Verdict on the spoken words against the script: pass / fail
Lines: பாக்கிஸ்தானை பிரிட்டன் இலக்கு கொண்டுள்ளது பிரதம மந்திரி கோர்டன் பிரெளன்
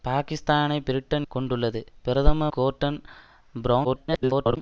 fail